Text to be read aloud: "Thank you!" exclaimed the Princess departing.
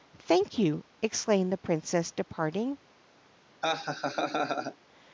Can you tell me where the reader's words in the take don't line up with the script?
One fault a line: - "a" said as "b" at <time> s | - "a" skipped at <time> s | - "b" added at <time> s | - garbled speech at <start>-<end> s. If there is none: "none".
none